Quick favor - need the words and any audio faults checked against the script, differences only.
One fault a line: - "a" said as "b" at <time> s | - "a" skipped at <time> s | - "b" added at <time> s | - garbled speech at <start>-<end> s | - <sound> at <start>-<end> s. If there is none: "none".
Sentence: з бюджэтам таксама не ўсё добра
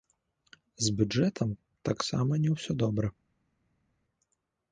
none